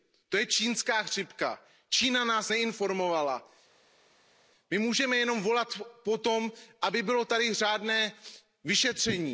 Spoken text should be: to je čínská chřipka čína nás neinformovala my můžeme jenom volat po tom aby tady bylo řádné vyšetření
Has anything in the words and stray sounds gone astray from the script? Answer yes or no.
no